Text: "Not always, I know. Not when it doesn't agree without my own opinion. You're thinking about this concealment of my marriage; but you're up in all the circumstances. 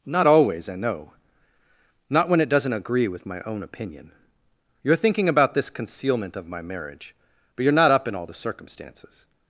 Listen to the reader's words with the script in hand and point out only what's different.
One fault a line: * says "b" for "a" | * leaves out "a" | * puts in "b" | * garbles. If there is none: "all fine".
* says "with" for "without"
* puts in "not"